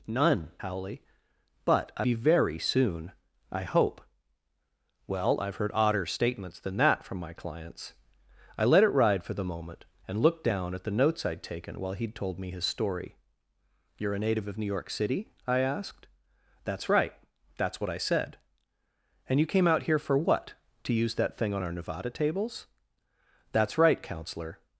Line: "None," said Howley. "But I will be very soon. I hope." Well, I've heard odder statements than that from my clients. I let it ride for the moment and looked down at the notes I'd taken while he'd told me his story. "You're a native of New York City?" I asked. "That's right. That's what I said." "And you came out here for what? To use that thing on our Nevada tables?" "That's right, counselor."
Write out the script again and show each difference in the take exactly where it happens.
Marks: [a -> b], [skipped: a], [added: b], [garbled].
"None," [skipped: said] Howley. "But I [skipped: will] be very soon. I hope." Well, I've heard odder statements than that from my clients. I let it ride for the moment and looked down at the notes I'd taken while he'd told me his story. "You're a native of New York City?" I asked. "That's right. That's what I said." "And you came out here for what? To use that thing on our Nevada tables?" "That's right, counselor."